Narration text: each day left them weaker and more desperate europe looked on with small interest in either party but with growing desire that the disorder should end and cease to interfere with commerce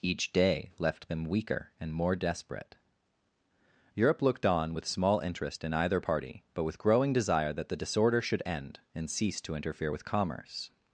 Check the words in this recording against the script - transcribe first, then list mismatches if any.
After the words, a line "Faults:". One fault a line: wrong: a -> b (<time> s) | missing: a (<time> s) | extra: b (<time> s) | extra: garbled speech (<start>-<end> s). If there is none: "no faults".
each day left them weaker and more desperate europe looked on with small interest in either party but with growing desire that the disorder should end and cease to interfere with commerce
Faults:
no faults